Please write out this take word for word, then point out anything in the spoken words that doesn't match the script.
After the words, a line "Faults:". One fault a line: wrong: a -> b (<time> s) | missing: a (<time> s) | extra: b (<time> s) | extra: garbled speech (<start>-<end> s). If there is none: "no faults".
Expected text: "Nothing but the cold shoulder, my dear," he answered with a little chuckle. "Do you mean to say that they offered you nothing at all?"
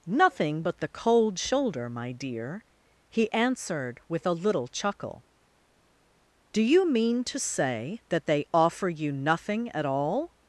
"Nothing but the cold shoulder, my dear," he answered with a little chuckle. "Do you mean to say that they offer you nothing at all?"
Faults:
wrong: offered -> offer (8.5 s)